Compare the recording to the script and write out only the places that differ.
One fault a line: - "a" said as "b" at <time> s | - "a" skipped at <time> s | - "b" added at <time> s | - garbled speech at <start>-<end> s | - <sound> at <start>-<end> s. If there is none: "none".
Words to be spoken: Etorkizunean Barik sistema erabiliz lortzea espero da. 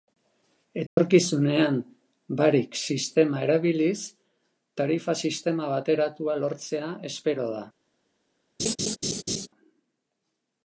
- dropout at 0.9-1.0 s
- "tarifa sistema bateratua" added at 4.8 s
- laugh at 8.6-9.5 s